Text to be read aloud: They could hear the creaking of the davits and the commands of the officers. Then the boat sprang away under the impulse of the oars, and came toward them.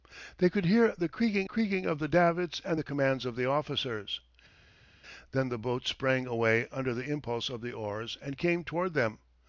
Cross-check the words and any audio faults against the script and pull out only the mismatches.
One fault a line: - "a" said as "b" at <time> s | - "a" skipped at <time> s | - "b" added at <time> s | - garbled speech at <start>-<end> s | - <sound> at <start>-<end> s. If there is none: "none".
- "creaking" added at 1.4 s